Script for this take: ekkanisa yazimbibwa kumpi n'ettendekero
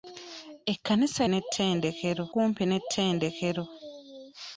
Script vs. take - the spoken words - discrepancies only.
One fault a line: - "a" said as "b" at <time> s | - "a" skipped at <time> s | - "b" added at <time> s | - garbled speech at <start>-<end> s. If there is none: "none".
- "yazimbibwa" said as "n'ettendekero" at 1.3 s